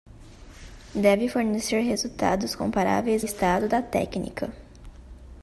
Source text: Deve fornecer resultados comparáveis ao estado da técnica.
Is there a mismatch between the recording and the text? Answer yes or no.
yes